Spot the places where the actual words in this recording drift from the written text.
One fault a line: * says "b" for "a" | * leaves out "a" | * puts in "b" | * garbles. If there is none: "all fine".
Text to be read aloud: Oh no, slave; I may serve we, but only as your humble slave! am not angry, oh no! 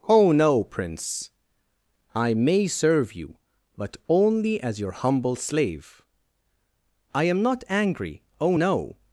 * says "prince" for "slave"
* says "you" for "we"
* puts in "I"